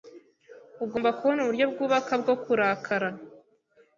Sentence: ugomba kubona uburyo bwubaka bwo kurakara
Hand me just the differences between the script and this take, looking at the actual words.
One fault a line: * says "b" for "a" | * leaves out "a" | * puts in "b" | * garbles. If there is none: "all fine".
all fine